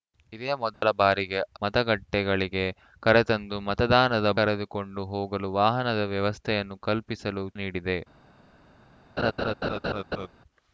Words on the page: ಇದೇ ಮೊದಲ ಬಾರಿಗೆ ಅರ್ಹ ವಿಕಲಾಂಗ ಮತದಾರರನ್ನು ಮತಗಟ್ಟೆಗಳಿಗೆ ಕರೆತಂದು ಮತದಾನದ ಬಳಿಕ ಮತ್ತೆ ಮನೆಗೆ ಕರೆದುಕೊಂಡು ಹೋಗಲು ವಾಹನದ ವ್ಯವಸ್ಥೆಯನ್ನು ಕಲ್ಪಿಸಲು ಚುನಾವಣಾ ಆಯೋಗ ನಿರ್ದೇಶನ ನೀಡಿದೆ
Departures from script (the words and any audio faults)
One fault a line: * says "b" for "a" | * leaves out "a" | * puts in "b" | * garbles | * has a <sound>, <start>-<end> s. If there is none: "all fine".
* has a dropout, 0.7-0.8 s
* leaves out "ಅರ್ಹ ವಿಕಲಾಂಗ ಮತದಾರರನ್ನು"
* leaves out "ಬಳಿಕ ಮತ್ತೆ ಮನೆಗೆ"
* leaves out "ಚುನಾವಣಾ ಆಯೋಗ ನಿರ್ದೇಶನ"
* has a laugh, 9.2-10.3 s